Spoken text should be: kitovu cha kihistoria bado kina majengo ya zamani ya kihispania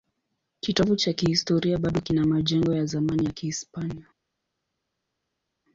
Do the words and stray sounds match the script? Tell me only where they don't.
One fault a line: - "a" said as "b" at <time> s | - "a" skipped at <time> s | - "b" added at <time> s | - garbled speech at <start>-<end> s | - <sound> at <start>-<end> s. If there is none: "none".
none